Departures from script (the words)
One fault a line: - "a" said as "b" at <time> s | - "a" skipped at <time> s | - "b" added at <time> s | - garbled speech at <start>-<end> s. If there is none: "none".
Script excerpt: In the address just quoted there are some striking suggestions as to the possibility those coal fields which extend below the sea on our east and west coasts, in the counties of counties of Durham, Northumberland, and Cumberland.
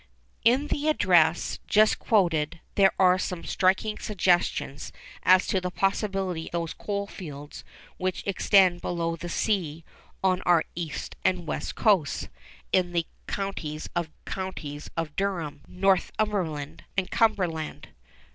none